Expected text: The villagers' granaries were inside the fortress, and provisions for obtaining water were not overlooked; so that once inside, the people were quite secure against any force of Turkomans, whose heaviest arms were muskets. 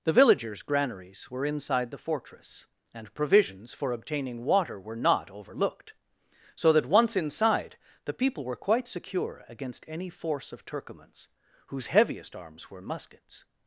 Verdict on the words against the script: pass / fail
pass